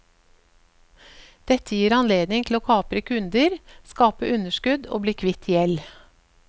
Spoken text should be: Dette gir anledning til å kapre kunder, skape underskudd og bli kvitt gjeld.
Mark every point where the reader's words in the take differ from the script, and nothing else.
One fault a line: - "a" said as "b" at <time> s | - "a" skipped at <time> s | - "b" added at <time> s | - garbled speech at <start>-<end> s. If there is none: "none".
none